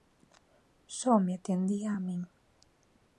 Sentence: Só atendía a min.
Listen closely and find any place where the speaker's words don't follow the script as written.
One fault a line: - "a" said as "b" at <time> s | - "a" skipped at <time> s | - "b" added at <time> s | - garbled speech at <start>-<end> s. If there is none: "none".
- "me" added at 1.2 s